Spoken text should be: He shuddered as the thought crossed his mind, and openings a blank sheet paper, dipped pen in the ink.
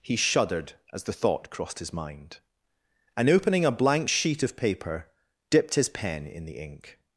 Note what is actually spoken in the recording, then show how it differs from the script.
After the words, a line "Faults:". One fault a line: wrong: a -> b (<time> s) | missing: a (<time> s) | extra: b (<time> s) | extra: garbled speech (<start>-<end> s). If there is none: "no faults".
He shuddered as the thought crossed his mind, and opening a blank sheet of paper, dipped his pen in the ink.
Faults:
wrong: openings -> opening (3.3 s)
extra: of (4.4 s)
extra: his (5.7 s)